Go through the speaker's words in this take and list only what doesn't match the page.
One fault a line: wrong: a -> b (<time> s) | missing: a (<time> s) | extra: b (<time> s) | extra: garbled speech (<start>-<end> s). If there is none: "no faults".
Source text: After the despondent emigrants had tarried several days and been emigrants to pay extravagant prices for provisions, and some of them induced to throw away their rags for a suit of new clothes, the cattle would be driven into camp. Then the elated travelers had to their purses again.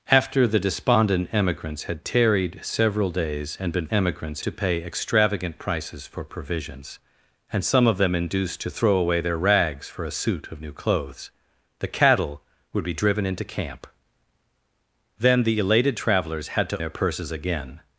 no faults